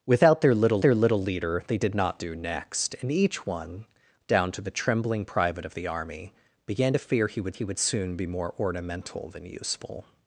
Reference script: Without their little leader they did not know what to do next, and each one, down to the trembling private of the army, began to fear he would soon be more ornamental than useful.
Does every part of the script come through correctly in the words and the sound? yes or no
no